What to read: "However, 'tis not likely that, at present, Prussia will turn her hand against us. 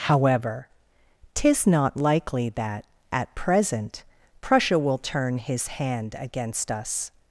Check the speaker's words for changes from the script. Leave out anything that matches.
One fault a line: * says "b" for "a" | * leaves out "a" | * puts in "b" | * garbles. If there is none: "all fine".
* says "his" for "her"